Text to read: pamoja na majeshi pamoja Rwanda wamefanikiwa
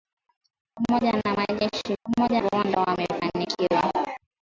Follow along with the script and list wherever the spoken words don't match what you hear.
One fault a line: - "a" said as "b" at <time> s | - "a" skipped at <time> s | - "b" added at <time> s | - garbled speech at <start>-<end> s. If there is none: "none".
none